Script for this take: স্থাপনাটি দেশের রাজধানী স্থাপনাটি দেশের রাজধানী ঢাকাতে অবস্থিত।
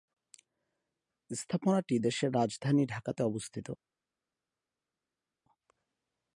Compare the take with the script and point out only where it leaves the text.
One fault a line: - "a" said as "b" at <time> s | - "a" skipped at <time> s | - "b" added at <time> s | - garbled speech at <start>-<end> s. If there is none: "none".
- "স্থাপনাটি দেশের রাজধানী" skipped at 2.8 s